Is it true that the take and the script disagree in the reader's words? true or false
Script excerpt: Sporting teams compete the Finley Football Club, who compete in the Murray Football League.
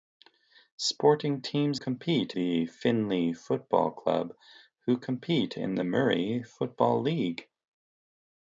false